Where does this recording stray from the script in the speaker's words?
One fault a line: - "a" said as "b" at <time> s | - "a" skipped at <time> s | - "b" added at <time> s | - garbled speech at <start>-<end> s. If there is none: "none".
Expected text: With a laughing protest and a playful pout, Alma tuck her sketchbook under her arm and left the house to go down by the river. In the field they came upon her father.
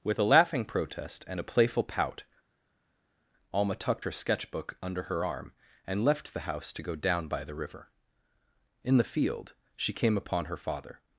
- "tuck" said as "tucked" at 3.7 s
- "they" said as "she" at 9.8 s